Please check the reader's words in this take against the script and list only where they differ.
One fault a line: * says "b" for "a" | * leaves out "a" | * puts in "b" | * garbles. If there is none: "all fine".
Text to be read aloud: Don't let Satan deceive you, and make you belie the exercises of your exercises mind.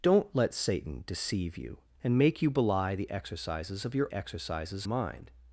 all fine